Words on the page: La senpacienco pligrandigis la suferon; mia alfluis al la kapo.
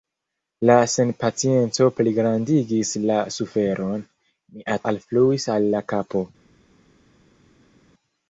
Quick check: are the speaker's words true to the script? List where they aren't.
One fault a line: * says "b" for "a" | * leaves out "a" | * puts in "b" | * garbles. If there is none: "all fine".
all fine